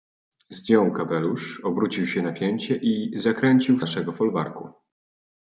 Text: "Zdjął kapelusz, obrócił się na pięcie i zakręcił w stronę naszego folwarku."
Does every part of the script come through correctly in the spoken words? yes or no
no